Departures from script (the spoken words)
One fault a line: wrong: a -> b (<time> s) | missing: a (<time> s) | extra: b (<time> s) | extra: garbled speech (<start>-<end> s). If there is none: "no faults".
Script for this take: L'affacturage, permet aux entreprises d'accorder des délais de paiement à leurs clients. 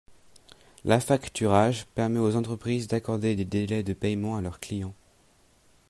no faults